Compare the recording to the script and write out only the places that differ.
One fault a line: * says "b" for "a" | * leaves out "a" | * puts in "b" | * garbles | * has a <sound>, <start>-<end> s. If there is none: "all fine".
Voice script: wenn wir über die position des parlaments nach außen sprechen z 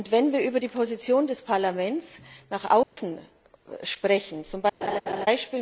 * has a dropout, 2.8-3.0 s
* has a laugh, 4.8-5.3 s